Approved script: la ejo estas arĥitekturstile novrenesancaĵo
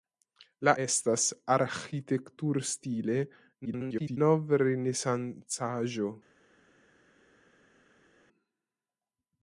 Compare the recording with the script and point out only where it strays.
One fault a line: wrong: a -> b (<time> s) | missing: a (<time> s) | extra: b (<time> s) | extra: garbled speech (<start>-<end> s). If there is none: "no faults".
missing: ejo (0.7 s)
extra: garbled speech (3.6-4.2 s)